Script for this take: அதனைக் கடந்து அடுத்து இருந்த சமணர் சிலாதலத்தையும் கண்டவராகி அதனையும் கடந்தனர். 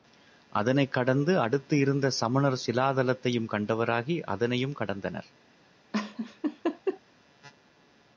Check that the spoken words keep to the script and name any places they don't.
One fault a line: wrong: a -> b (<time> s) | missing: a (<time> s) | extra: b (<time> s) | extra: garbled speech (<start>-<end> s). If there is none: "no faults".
no faults